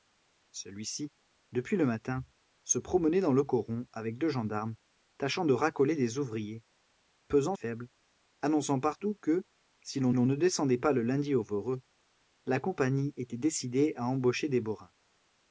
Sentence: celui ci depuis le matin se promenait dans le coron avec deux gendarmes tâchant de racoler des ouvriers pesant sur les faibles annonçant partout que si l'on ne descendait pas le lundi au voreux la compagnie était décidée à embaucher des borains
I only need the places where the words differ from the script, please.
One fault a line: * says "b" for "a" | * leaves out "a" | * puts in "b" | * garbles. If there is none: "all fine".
* leaves out "sur les"
* puts in "l'on"